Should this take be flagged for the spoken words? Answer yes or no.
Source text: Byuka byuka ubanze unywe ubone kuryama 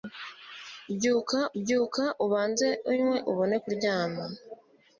no